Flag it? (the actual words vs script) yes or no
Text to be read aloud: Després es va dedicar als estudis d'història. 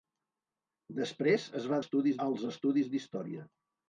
yes